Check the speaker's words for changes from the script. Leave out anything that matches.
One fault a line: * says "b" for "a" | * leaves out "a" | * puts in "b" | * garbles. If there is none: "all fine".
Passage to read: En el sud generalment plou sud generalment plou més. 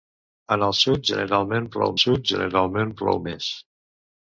all fine